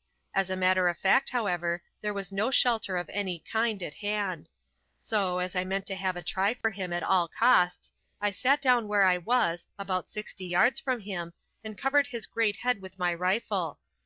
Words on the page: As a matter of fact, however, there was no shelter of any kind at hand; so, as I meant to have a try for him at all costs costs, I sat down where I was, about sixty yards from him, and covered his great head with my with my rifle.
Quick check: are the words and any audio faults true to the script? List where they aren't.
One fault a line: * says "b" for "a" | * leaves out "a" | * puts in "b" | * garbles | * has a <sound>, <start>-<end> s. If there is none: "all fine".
* has a dropout, 6.6-6.6 s
* leaves out "costs"
* leaves out "with my"